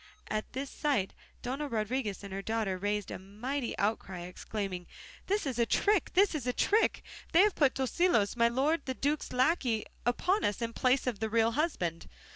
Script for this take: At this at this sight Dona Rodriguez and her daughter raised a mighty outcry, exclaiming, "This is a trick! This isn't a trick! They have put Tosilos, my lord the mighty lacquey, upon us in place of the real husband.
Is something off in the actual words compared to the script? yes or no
yes